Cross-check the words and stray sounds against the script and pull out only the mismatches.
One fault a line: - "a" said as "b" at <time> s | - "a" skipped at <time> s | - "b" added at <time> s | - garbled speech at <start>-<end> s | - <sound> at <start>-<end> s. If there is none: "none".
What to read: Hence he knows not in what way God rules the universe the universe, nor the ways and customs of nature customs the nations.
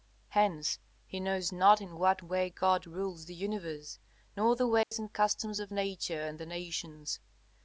- "the universe" skipped at 4.0 s
- dropout at 4.8-4.9 s
- "customs" said as "and" at 6.2 s